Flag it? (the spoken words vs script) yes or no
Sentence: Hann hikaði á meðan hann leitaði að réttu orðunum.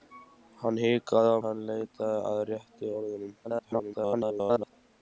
yes